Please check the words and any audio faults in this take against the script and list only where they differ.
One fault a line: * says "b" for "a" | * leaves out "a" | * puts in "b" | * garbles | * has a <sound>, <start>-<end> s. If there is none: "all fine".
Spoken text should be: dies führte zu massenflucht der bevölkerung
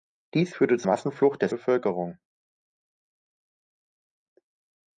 all fine